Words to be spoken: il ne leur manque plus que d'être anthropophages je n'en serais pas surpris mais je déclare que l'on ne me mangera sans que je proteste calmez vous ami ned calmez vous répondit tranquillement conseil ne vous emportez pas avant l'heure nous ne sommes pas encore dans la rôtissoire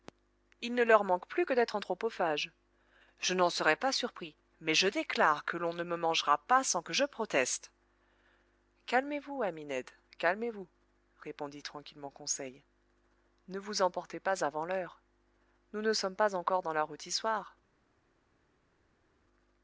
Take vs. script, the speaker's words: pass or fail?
fail